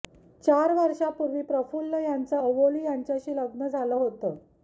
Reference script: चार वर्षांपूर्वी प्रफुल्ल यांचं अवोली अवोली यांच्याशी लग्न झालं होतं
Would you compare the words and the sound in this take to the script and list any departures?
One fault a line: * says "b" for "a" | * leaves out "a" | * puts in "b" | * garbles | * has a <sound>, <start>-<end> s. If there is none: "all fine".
* leaves out "अवोली"